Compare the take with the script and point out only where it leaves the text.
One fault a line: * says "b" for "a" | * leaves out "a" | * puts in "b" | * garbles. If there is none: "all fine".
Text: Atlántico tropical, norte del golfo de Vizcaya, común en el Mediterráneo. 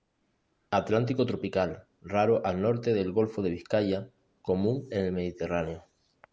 * puts in "raro al"